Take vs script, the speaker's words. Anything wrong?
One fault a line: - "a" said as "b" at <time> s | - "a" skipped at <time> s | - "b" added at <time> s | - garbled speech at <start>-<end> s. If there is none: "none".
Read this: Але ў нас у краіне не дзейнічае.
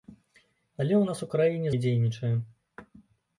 none